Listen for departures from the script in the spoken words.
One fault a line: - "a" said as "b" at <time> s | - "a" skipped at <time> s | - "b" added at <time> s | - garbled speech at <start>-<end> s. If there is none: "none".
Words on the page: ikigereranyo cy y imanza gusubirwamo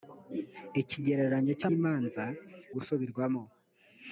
none